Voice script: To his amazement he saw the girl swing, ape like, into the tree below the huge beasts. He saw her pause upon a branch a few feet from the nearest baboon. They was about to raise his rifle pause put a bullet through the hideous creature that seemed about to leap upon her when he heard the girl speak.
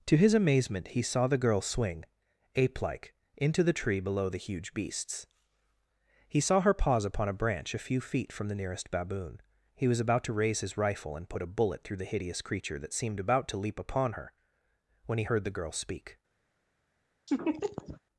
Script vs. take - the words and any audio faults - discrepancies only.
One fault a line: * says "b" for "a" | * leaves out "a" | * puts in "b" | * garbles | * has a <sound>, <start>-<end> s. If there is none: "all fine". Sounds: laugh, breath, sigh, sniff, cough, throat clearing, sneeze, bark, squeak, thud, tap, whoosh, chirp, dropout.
* says "He" for "They"
* says "and" for "pause"
* has a laugh, 17.3-18.0 s